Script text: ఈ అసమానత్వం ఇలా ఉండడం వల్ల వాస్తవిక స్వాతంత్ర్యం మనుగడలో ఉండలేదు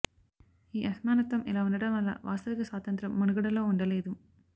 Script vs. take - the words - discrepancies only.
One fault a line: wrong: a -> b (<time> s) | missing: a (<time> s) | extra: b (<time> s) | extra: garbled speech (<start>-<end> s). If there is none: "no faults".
no faults